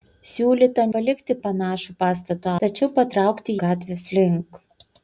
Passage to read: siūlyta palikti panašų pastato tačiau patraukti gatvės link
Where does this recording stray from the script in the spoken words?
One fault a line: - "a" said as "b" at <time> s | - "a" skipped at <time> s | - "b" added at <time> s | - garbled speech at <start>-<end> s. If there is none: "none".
none